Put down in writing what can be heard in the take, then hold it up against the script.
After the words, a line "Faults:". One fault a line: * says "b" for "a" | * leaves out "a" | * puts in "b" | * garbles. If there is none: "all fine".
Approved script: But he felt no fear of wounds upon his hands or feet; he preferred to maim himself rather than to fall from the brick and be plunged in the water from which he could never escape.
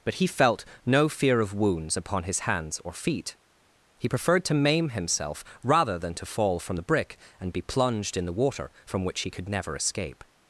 But he felt no fear of wounds upon his hands or feet; he preferred to maim himself rather than to fall from the brick and be plunged in the water from which he could never escape.
Faults:
all fine